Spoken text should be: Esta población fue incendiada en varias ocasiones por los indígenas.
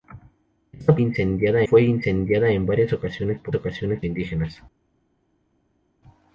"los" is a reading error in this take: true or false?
true